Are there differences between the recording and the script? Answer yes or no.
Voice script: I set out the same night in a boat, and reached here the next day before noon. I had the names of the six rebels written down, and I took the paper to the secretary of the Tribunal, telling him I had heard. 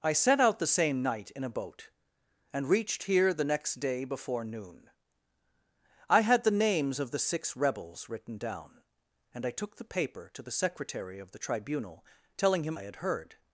no